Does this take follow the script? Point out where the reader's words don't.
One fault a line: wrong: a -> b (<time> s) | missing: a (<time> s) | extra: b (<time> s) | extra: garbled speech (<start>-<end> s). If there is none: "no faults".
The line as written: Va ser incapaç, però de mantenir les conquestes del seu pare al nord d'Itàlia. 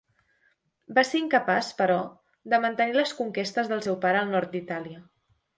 no faults